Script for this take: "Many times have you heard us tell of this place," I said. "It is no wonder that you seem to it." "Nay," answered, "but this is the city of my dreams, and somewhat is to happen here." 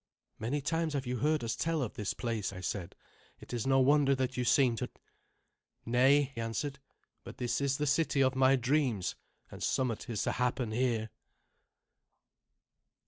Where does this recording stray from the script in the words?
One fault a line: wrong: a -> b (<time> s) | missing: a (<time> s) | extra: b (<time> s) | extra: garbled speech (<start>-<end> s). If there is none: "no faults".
no faults